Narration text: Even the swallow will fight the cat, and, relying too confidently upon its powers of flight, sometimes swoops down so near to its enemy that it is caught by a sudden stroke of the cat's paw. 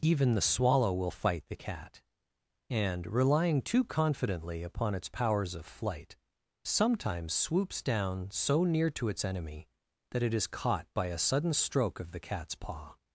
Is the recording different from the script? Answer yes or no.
no